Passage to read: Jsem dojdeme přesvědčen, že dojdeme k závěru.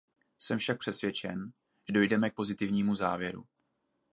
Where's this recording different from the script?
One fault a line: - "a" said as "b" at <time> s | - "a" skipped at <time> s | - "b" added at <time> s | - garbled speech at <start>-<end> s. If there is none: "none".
- "dojdeme" said as "však" at 0.6 s
- "pozitivnímu" added at 2.3 s